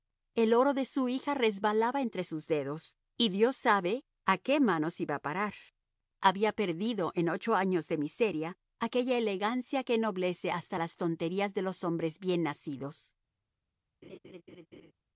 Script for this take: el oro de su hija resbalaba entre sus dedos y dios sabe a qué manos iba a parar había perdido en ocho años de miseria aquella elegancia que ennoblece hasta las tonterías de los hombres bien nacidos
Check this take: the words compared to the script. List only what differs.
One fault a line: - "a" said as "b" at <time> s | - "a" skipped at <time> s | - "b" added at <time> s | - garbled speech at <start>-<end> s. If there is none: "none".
none